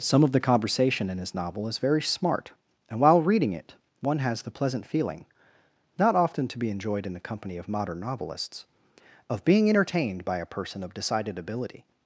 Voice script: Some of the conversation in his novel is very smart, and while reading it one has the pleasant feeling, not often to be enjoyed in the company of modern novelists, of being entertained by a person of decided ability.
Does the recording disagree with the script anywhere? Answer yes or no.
no